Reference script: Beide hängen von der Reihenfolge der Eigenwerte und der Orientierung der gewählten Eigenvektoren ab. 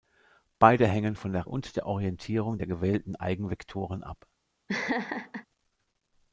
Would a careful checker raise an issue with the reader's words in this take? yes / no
yes